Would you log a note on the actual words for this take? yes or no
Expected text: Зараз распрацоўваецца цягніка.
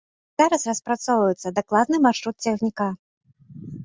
yes